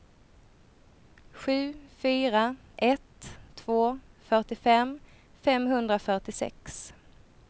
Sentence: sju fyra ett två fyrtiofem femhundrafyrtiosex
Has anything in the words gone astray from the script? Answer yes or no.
no